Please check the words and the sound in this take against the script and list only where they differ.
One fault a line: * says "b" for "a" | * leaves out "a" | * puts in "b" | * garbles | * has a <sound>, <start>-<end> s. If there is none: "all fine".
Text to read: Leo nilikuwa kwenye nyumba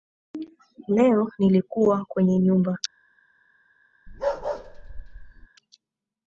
* has a bark, 4.1-5.5 s